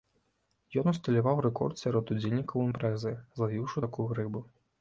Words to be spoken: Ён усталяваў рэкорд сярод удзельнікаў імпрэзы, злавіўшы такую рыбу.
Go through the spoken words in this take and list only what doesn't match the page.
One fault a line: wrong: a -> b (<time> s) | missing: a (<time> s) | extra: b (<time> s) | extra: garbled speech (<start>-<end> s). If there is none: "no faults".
no faults